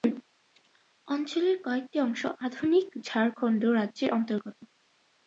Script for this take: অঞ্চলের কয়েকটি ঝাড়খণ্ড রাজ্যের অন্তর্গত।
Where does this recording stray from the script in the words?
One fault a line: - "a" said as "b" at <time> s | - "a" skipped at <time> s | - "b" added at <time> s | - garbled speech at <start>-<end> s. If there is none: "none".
- "অংশ আধুনিক" added at 2.0 s